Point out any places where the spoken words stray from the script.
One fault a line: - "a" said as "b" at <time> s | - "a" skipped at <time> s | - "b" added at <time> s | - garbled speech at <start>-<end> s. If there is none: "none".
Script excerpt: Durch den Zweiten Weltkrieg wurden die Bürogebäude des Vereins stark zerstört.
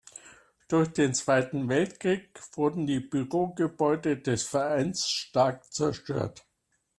none